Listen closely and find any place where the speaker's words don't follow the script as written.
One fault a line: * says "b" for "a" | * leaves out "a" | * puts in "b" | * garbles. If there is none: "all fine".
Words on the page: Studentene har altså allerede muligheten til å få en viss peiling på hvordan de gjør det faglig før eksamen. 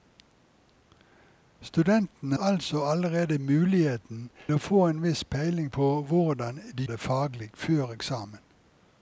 * leaves out "har"
* leaves out "til"
* leaves out "gjør"